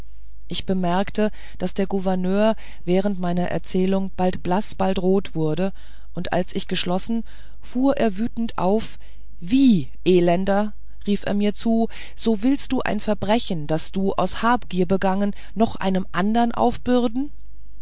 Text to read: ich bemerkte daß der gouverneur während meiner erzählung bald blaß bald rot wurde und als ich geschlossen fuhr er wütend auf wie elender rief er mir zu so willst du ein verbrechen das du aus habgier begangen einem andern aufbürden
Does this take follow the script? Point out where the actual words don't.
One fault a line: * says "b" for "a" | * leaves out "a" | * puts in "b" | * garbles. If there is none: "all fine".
* puts in "noch"